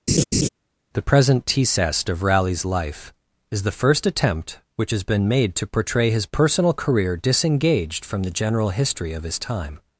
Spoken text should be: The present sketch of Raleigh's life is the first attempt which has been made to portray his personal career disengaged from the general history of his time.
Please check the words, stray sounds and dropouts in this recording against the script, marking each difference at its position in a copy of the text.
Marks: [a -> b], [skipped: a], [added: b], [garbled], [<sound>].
[laugh] The present [sketch -> tcest] of Raleigh's life is the first attempt which has been made to portray his personal career disengaged from the general history of his time.